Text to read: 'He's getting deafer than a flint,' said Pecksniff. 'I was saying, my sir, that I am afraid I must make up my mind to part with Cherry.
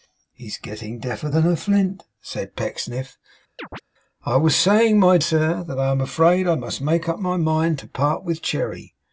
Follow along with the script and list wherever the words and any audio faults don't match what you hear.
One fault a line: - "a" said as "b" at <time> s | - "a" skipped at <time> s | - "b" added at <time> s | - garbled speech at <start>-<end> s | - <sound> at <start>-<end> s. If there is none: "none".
- chirp at 3.6-3.8 s